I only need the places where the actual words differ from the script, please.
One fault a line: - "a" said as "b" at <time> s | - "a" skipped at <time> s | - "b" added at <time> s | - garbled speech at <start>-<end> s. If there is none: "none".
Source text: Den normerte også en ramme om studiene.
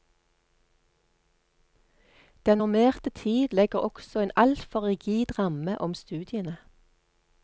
- "tid legger" added at 3.1 s
- "altfor rigid" added at 4.4 s